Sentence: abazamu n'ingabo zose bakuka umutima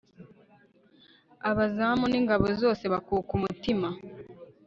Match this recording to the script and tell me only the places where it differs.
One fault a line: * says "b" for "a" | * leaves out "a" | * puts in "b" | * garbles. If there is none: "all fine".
all fine